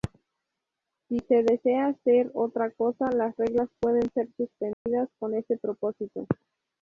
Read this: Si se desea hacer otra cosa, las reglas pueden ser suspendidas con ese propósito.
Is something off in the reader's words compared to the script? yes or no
no